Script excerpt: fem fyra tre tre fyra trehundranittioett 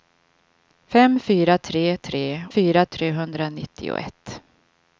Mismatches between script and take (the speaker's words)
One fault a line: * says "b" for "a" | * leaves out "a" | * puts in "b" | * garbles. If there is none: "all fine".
all fine